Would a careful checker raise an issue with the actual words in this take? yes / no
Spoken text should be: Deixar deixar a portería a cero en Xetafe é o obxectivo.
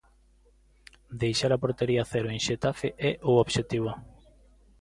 yes